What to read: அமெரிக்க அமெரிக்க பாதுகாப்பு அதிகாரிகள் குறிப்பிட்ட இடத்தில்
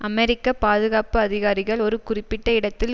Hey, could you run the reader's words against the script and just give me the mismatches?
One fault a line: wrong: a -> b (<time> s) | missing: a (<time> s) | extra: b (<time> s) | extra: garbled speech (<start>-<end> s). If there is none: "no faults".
missing: அமெரிக்க (0.5 s)
extra: ஒரு (1.8 s)